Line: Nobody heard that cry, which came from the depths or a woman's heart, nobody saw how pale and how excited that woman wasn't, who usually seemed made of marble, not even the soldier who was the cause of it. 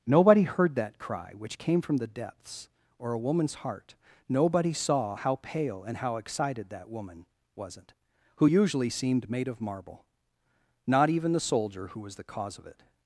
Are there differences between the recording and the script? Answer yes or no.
no